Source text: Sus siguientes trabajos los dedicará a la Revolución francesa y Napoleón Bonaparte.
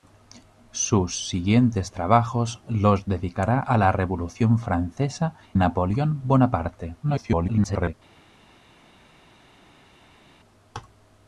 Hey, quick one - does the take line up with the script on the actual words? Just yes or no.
no